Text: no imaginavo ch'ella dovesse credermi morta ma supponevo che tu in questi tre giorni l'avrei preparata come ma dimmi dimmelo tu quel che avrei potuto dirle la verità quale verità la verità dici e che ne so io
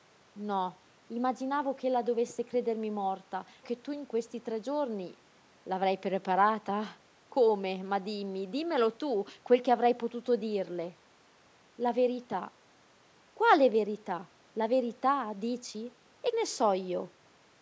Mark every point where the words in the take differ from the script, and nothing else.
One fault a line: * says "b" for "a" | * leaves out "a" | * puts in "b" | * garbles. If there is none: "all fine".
* leaves out "ma supponevo"
* leaves out "che"